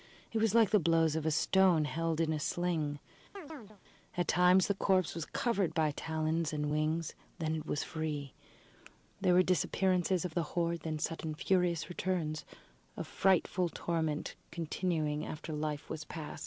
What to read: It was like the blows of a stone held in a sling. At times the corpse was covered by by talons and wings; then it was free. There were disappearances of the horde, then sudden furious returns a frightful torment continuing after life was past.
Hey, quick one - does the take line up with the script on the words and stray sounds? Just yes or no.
no